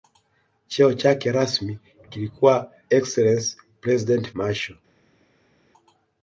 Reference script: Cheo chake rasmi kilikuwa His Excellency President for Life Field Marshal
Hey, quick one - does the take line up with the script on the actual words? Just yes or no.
no